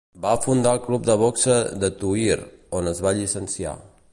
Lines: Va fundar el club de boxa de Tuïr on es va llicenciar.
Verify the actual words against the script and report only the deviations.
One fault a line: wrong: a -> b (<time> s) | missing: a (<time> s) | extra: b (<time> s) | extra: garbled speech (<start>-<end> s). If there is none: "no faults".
no faults